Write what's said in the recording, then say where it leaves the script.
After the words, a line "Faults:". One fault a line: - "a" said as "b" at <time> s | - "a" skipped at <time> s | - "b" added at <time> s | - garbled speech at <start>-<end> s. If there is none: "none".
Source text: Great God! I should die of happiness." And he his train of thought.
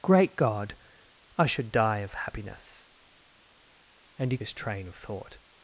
Great God! I should die of happiness." And he his train of thought.
Faults:
none